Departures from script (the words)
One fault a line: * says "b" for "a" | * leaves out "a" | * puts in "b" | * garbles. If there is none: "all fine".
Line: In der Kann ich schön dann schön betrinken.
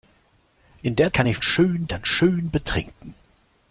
all fine